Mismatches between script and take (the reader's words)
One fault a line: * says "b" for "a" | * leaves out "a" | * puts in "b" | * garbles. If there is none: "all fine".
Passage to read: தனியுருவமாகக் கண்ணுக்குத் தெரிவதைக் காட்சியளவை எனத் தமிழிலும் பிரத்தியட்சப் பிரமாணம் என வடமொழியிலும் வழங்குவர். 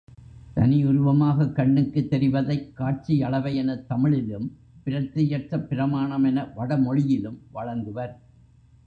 all fine